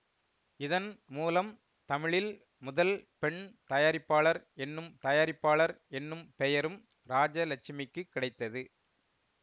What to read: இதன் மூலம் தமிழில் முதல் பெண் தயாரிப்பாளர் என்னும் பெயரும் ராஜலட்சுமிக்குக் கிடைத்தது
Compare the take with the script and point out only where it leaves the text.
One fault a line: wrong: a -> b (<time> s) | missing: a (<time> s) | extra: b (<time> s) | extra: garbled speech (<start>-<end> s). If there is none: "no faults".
extra: தயாரிப்பாளர் என்னும் (5.0 s)